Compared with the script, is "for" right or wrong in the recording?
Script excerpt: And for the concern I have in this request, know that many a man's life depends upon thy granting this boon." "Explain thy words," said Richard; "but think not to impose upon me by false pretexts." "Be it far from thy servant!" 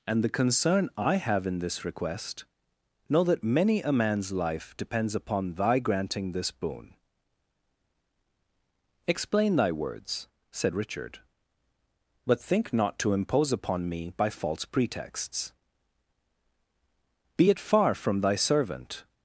wrong